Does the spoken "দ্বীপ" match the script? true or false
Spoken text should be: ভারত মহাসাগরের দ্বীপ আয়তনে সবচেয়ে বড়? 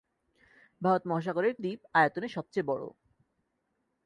true